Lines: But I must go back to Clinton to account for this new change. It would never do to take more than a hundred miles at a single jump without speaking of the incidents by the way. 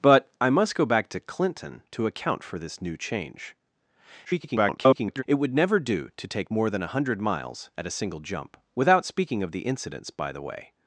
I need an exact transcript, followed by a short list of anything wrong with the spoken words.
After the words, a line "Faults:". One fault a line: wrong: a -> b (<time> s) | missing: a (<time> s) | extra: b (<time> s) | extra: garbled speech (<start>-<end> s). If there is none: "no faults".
But I must go back to Clinton to account for this new change. [garbled] It would never do to take more than a hundred miles at a single jump without speaking of the incidents by the way.
Faults:
extra: garbled speech (4.2-5.2 s)